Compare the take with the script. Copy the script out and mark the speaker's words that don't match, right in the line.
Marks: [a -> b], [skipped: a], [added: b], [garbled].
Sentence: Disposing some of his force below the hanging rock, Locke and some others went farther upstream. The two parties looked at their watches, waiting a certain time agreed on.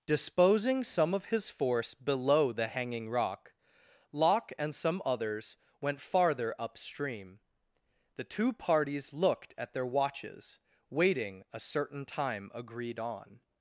Disposing some of his force below the hanging rock, Locke and some others went farther upstream. The two parties looked at their watches, waiting a certain time agreed on.